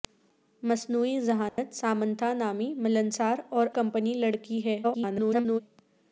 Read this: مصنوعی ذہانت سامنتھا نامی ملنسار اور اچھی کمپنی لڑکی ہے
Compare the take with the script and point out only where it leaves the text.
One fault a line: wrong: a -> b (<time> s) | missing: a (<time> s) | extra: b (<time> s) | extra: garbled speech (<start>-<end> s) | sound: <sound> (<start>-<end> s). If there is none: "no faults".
sound: dropout (1.5-1.6 s)
missing: اچھی (3.7 s)
extra: garbled speech (4.8-5.6 s)